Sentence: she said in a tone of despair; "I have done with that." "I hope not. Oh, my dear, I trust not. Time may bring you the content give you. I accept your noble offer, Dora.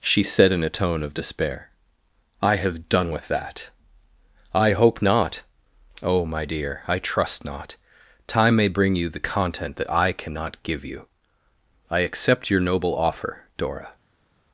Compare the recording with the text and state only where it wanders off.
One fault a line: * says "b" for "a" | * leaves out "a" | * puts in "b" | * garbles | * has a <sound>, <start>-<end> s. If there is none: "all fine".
* puts in "that I cannot"